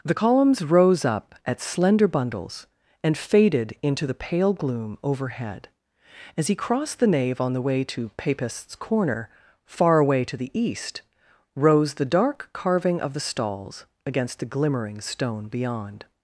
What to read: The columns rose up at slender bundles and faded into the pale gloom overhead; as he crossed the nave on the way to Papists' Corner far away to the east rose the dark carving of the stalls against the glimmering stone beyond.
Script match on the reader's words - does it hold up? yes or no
yes